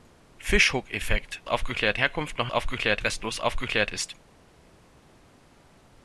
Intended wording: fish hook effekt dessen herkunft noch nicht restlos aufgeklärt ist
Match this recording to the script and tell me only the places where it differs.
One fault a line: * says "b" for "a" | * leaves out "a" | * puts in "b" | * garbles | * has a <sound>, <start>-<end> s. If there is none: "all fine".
* says "aufgeklärt" for "dessen"
* says "aufgeklärt" for "nicht"